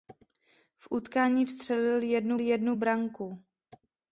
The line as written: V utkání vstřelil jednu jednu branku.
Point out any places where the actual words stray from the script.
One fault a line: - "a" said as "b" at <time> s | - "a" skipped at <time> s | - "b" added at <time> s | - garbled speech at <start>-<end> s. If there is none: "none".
none